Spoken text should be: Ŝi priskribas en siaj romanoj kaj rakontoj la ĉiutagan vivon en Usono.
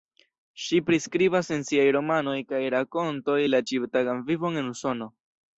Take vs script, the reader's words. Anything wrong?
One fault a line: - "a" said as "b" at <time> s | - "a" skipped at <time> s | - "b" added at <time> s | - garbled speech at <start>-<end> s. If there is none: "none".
none